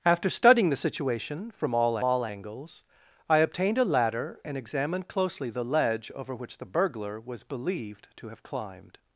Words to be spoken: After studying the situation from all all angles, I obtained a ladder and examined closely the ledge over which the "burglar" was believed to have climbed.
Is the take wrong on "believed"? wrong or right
right